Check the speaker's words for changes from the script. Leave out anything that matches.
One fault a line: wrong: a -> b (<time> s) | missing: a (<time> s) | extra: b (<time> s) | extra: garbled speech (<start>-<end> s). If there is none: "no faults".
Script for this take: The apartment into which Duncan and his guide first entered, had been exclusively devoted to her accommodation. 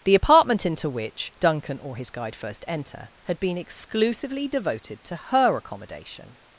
wrong: and -> or (1.8 s)
wrong: entered -> enter (2.7 s)